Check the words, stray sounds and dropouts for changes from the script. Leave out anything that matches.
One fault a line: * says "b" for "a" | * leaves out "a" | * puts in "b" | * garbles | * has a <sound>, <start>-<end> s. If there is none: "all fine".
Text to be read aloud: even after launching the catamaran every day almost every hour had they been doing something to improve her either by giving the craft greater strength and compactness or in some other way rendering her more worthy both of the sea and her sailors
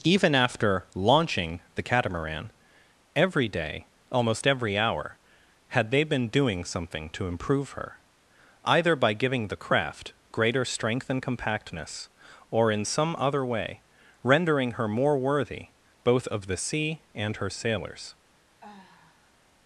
* has a sigh, 18.6-19.4 s